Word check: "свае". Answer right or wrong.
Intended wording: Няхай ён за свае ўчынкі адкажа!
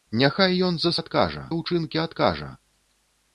wrong